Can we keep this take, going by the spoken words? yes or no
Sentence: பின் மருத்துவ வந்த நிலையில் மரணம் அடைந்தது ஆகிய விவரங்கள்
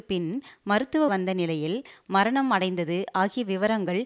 yes